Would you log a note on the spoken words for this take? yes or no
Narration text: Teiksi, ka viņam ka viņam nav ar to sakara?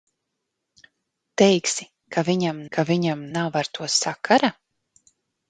no